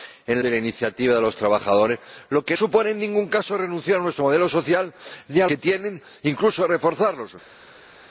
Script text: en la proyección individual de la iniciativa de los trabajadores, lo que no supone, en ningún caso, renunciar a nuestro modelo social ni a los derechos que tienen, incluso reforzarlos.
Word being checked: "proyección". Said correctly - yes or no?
no